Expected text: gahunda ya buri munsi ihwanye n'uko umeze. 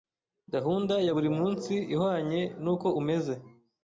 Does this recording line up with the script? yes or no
yes